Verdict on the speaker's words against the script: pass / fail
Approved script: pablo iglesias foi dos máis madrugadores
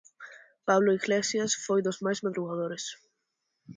pass